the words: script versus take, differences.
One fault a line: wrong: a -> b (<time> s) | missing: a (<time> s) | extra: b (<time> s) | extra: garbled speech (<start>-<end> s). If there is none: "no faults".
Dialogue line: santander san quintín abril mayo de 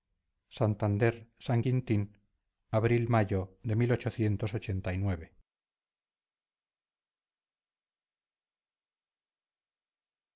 no faults